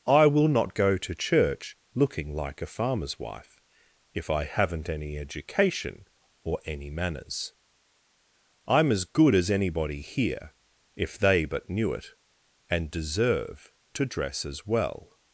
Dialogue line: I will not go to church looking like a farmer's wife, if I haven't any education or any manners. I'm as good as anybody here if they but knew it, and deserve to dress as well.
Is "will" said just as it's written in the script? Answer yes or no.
yes